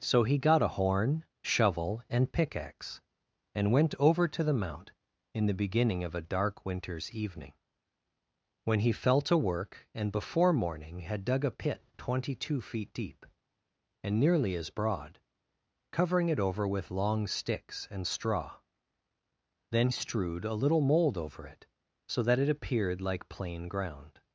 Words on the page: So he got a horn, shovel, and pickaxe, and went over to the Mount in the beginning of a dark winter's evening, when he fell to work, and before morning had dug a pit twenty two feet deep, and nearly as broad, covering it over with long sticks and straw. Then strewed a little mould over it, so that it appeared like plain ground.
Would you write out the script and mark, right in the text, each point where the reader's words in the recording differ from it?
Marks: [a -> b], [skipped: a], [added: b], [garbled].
So he got a horn, shovel, and pickaxe, and went over to the Mount in the beginning of a dark winter's evening, when he fell to work, and before morning had dug a pit twenty two feet deep, and nearly as broad, covering it over with long sticks and straw. Then strewed a little mould over it, so that it appeared like plain ground.